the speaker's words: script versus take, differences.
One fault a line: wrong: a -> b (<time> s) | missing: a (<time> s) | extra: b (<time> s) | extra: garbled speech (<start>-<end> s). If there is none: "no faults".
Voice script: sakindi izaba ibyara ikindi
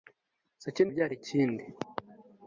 missing: izaba (0.9 s)